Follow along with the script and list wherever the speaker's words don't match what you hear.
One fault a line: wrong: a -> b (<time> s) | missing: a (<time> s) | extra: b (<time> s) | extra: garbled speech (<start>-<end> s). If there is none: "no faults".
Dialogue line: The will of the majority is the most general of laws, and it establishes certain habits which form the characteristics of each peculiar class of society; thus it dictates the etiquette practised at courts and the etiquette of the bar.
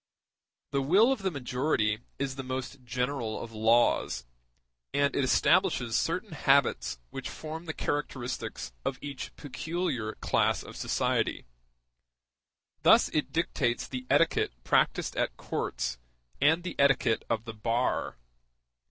no faults